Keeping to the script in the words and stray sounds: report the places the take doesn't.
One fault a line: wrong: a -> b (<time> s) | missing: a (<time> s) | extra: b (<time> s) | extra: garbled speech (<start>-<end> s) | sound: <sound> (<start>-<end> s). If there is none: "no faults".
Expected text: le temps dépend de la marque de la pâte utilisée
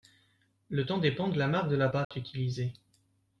sound: dropout (2.0-2.1 s)